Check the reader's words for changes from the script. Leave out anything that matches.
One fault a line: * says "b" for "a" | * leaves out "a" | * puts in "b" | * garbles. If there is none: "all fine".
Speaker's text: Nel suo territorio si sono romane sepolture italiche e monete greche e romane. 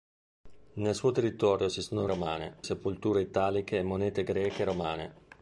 all fine